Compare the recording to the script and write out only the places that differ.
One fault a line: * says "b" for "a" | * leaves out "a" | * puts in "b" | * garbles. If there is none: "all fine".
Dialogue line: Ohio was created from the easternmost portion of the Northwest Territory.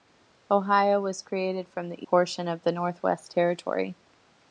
* leaves out "easternmost"